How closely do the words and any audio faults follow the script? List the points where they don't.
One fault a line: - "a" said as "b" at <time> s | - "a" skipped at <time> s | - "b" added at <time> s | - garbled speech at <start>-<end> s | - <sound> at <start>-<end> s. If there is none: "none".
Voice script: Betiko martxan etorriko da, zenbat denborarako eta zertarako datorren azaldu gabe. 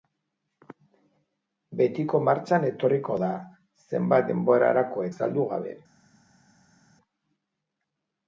- "eta zertarako datorren" skipped at 5.1 s